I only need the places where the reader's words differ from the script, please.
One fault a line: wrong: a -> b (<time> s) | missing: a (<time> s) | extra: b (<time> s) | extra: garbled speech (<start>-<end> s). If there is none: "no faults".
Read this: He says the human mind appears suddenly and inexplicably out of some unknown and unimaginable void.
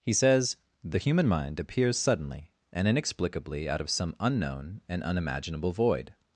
no faults